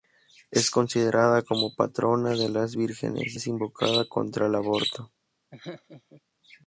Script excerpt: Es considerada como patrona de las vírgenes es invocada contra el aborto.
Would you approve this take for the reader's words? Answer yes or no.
yes